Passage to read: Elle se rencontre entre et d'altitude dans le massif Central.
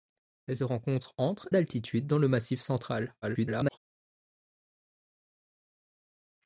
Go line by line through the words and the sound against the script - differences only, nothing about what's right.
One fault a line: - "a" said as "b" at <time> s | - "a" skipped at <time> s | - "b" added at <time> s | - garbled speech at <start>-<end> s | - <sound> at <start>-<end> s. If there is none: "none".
- "se" skipped at 0.6 s
- "et" skipped at 1.5 s
- garbled speech at 3.2-3.8 s